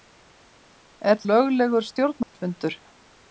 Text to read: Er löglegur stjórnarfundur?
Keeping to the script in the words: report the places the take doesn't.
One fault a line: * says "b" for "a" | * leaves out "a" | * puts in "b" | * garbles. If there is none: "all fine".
all fine